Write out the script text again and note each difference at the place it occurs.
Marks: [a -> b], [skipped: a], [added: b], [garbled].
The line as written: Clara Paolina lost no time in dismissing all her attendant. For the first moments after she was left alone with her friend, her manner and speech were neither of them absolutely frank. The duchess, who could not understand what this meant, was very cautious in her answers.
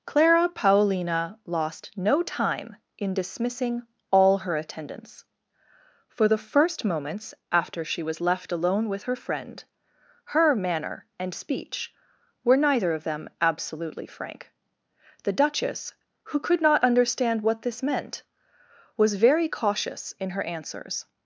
Clara Paolina lost no time in dismissing all her [attendant. -> attendants] For the first moments after she was left alone with her friend, her manner and speech were neither of them absolutely frank. The duchess, who could not understand what this meant, was very cautious in her answers.